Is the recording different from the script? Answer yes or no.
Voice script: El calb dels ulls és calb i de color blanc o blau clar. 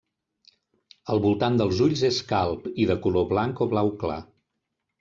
yes